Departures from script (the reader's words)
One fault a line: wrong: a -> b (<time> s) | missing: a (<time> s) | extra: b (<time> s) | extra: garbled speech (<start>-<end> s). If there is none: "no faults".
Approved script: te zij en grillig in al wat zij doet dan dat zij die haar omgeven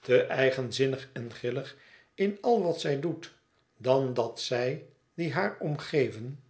wrong: zij -> eigenzinnig (0.2 s)